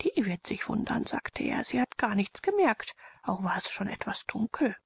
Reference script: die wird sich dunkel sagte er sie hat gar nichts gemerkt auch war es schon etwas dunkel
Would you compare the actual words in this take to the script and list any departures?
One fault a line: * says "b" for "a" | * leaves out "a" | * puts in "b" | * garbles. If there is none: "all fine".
* says "wundern" for "dunkel"